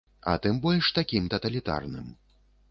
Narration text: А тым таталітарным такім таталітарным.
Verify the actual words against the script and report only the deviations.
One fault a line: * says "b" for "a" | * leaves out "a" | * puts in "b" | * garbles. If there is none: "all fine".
* says "больш" for "таталітарным"